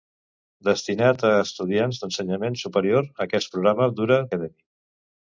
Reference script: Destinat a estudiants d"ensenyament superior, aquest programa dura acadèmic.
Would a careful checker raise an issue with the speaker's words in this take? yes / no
no